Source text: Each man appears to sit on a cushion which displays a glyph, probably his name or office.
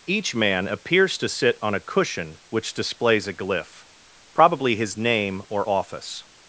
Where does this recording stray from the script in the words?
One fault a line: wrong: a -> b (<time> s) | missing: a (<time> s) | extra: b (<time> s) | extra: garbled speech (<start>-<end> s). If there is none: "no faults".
no faults